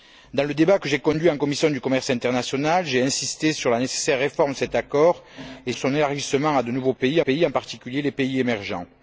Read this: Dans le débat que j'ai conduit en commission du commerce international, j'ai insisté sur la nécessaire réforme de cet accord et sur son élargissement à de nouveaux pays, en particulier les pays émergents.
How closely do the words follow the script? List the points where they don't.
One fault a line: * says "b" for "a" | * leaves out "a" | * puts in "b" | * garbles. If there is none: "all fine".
* leaves out "sur"
* puts in "pays"